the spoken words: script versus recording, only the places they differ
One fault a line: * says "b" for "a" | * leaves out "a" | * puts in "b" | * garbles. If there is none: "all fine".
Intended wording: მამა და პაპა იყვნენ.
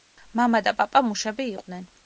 * puts in "მუშები"